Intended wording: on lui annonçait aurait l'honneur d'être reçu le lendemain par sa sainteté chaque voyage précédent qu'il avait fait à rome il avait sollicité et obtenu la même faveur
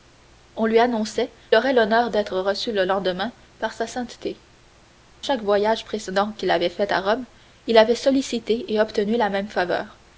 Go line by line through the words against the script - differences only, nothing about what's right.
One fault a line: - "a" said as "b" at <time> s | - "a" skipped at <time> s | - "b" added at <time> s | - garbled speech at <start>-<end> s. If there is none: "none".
none